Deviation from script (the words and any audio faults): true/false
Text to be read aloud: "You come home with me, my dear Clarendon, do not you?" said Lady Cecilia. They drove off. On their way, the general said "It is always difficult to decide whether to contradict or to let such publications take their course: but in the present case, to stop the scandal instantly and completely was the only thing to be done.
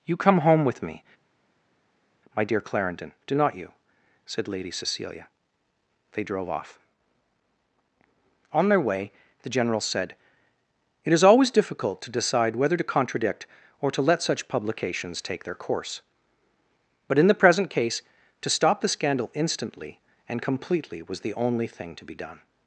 false